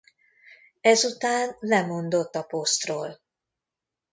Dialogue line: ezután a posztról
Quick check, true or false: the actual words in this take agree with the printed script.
false